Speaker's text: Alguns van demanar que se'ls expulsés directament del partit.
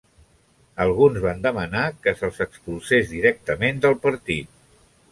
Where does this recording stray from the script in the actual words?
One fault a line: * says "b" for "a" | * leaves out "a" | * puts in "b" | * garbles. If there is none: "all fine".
all fine